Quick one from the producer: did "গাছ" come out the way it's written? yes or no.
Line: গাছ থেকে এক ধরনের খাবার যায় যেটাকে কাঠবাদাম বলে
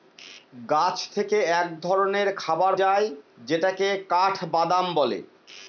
yes